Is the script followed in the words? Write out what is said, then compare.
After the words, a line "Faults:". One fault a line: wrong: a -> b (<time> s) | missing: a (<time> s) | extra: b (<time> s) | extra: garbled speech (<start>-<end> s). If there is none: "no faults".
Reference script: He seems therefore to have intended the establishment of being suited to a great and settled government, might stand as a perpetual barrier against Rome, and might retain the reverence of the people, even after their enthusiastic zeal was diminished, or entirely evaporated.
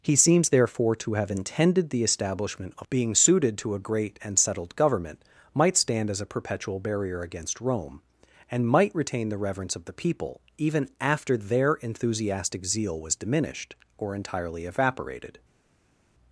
He seems therefore to have intended the establishment of being suited to a great and settled government, might stand as a perpetual barrier against Rome, and might retain the reverence of the people, even after their enthusiastic zeal was diminished, or entirely evaporated.
Faults:
no faults